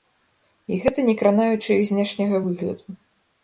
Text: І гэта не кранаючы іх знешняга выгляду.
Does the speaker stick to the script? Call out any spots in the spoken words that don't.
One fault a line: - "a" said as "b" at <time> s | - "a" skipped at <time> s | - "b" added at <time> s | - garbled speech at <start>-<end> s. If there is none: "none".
none